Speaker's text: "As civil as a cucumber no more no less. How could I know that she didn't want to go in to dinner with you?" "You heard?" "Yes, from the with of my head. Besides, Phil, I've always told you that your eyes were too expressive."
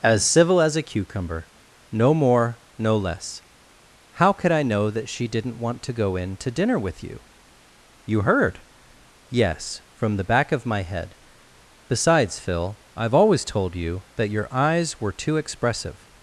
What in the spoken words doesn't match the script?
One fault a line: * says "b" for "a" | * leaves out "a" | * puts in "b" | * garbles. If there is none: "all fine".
* says "back" for "with"